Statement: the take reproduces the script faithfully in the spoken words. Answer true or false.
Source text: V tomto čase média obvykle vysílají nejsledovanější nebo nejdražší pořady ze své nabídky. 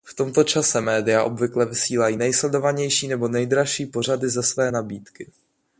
true